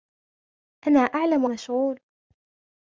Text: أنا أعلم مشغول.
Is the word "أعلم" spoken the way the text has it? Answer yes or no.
yes